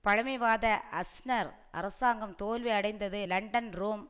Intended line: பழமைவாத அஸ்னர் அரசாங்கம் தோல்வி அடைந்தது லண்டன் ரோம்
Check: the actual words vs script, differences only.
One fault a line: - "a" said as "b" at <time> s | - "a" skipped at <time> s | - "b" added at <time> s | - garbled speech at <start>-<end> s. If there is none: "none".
none